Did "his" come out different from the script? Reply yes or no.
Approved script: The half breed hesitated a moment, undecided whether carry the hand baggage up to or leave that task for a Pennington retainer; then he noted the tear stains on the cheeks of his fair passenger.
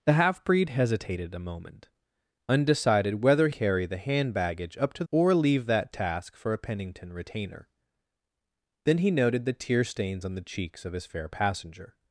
no